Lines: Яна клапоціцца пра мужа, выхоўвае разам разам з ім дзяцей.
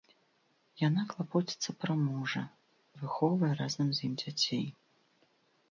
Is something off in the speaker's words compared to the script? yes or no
yes